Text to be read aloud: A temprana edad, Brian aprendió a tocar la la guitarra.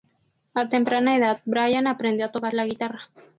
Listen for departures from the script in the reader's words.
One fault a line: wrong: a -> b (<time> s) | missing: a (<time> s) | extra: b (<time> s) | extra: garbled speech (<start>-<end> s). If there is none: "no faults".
missing: la (2.6 s)